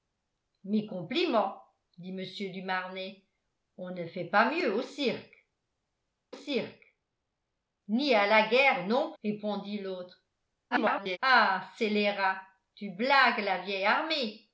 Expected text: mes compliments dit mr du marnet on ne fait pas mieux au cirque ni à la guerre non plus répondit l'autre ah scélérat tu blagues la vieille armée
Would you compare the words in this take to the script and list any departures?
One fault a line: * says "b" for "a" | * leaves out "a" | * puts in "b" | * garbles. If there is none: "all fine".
* puts in "cirque"
* leaves out "plus"
* garbles